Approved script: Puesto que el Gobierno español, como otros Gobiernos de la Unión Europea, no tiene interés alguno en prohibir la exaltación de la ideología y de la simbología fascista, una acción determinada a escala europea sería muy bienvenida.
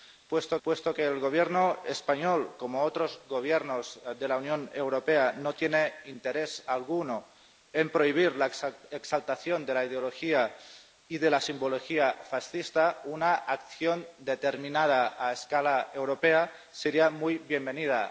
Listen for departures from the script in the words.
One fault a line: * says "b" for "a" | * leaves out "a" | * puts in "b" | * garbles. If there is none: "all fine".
* puts in "puesto"